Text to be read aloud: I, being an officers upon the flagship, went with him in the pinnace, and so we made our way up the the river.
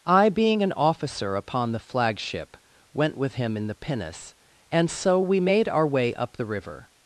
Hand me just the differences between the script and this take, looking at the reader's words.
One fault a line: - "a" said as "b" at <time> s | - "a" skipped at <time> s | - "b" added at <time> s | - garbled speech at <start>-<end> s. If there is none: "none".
- "officers" said as "officer" at 0.7 s
- "the" skipped at 6.4 s